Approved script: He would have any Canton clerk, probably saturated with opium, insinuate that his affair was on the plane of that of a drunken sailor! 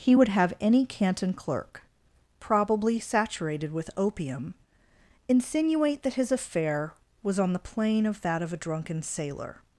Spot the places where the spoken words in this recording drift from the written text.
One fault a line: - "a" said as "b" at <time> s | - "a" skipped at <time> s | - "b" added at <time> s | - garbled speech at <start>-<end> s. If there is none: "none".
none